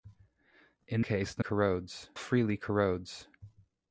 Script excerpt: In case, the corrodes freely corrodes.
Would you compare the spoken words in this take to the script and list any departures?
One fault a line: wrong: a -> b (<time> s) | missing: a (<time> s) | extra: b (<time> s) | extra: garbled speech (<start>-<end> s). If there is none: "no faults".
no faults